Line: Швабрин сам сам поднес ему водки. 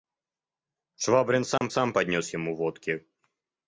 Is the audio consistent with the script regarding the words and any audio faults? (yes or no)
no